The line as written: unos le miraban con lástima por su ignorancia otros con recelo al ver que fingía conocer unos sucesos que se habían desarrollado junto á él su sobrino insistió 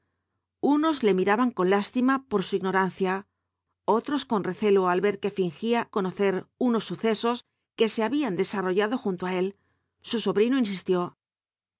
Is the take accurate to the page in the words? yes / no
yes